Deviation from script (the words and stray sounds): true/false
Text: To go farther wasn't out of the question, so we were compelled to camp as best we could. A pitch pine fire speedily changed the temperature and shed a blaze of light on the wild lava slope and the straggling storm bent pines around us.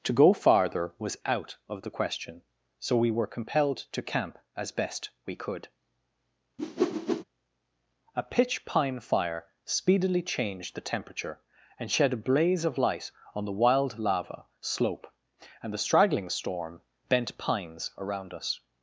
true